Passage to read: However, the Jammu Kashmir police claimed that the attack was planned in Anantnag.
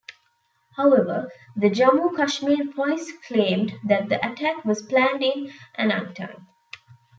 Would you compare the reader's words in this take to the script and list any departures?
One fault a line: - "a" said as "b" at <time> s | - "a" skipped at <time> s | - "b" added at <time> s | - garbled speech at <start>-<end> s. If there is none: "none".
none